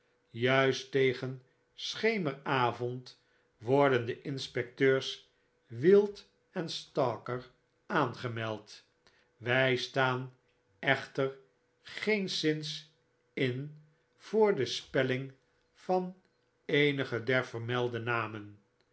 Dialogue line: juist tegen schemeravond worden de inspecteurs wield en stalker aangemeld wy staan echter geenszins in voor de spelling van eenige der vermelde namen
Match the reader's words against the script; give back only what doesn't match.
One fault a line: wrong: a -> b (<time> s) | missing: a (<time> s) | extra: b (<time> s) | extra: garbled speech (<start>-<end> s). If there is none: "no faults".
no faults